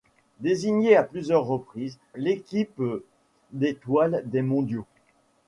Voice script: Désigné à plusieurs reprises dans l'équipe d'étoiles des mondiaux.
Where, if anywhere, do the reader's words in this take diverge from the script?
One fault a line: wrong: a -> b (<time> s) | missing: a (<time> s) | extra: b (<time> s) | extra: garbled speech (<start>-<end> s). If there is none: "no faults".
missing: dans (2.0 s)